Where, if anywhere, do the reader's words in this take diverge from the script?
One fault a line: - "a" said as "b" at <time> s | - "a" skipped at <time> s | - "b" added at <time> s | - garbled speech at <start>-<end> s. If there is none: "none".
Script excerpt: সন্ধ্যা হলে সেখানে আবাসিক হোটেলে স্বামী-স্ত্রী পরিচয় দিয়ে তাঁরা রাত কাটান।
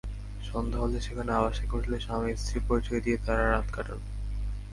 none